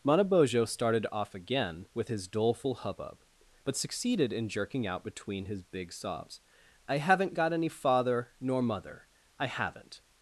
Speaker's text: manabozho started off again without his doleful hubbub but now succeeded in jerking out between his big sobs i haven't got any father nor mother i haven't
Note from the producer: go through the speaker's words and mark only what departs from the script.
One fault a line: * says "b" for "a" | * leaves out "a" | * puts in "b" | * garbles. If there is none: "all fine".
* says "with" for "without"
* leaves out "now"